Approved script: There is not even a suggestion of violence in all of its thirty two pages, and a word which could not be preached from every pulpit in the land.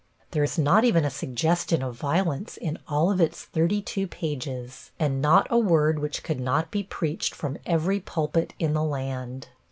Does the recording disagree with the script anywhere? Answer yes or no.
yes